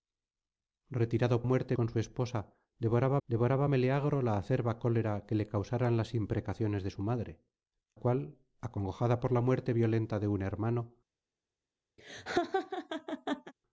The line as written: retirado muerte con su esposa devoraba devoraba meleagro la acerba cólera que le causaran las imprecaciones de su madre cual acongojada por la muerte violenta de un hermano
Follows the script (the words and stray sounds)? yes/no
no